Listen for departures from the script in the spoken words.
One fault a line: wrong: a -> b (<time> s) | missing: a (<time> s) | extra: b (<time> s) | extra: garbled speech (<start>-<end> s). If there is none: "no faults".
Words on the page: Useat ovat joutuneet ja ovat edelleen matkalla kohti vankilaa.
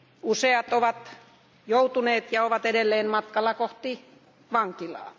no faults